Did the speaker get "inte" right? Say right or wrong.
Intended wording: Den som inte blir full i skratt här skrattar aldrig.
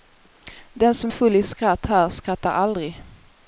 wrong